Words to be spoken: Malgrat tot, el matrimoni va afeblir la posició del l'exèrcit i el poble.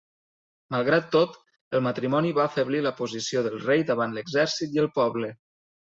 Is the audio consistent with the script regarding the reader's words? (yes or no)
no